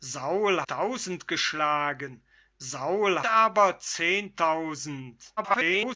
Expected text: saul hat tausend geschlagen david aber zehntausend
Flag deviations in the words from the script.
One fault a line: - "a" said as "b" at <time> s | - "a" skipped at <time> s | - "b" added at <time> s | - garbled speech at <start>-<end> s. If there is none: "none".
- "hat" skipped at 0.6 s
- "david" said as "saul" at 2.6 s
- garbled speech at 5.4-6.0 s